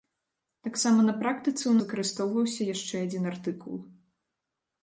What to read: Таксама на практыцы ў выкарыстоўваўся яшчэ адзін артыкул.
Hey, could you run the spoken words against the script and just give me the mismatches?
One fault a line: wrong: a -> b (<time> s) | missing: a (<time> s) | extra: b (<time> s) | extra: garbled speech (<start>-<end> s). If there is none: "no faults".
no faults